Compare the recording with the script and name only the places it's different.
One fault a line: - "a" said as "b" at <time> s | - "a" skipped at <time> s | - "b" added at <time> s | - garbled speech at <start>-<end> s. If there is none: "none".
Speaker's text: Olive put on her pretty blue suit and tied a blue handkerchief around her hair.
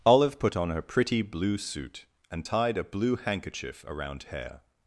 - "her" skipped at 4.2 s